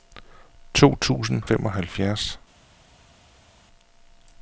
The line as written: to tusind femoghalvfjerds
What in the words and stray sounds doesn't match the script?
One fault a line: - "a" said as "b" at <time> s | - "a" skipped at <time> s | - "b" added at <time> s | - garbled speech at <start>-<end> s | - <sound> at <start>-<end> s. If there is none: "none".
none